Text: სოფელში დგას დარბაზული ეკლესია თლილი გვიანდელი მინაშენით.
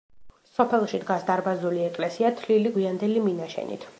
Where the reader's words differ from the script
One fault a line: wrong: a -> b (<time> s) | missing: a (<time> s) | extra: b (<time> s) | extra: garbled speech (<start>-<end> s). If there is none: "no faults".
no faults